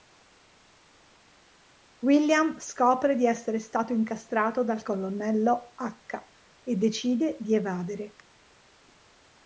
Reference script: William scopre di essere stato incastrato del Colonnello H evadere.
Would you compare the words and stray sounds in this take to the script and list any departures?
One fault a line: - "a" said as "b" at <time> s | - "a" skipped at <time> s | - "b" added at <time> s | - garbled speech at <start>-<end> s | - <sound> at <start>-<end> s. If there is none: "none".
- "del" said as "dal" at 4.6 s
- "e decide di" added at 6.6 s